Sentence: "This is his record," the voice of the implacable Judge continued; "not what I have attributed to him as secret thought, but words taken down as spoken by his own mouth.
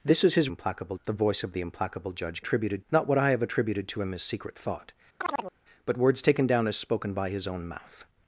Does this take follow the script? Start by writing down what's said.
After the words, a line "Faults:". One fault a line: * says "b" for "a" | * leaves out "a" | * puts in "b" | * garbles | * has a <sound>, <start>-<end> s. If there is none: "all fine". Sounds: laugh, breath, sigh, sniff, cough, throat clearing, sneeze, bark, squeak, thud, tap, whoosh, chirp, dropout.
"This is his implacable," the voice of the implacable Judge attributed; "not what I have attributed to him as secret thought, but words taken down as spoken by his own mouth.
Faults:
* says "implacable" for "record"
* says "attributed" for "continued"
* has a chirp, 5.2-5.5 s